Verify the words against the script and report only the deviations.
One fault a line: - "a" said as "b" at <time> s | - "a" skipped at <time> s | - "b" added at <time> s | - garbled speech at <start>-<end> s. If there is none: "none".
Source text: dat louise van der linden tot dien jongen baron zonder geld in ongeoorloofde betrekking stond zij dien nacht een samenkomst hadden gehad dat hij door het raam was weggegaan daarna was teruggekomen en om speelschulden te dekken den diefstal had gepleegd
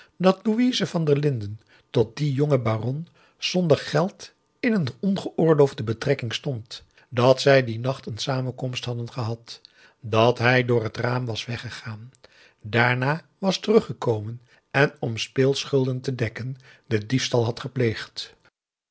- "een" added at 4.7 s
- "dat" added at 7.1 s